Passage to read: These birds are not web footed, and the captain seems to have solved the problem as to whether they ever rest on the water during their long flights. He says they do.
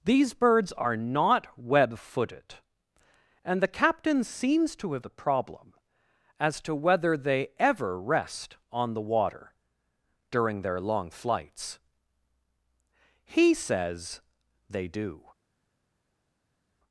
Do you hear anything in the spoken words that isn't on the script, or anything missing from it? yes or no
yes